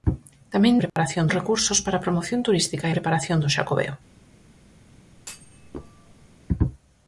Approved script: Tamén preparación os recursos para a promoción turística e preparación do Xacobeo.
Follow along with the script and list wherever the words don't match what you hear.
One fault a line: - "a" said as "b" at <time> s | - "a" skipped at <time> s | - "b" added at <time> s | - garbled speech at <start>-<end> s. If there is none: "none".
none